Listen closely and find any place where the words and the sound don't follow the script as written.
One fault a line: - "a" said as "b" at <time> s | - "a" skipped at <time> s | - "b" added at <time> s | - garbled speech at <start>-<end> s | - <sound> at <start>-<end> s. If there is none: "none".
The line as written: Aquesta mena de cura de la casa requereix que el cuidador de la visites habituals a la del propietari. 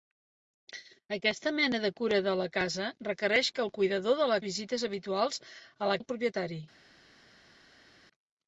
none